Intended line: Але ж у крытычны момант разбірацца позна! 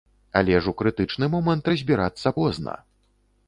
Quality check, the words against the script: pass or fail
pass